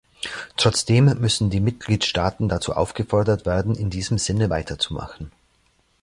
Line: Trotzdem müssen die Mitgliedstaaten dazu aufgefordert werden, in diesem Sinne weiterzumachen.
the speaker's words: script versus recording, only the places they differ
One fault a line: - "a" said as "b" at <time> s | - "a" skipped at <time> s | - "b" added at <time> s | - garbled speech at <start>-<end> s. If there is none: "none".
none